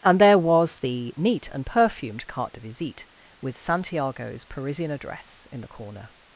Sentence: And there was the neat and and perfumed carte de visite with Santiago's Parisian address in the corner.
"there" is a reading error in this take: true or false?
false